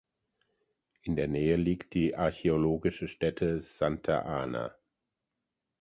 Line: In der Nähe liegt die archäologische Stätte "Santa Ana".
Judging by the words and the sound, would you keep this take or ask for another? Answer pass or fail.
pass